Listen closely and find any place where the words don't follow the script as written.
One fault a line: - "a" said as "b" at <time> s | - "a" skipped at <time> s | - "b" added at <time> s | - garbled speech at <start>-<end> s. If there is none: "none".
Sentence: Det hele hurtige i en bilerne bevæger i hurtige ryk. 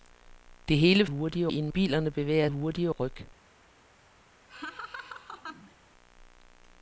none